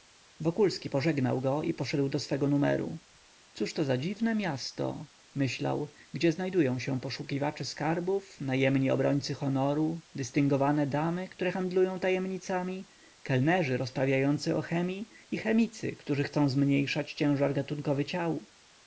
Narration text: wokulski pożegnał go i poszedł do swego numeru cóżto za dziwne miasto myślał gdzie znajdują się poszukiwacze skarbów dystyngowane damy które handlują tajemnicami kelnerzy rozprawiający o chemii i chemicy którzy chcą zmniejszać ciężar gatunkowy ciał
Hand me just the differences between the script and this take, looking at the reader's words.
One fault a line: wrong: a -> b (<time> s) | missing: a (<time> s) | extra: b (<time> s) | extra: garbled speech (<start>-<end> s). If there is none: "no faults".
extra: najemni obrońcy honoru (8.4 s)